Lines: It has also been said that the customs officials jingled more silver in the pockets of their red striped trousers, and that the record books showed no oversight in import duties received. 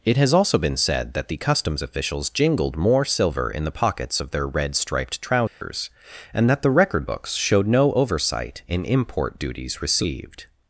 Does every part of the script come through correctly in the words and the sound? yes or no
no